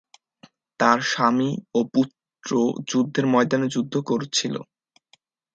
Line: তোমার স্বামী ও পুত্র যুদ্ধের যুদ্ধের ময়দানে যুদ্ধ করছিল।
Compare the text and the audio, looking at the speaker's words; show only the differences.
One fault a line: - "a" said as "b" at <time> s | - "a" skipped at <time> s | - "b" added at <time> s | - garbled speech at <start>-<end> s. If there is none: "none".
- "তোমার" said as "তার" at 0.8 s
- "যুদ্ধের" skipped at 3.2 s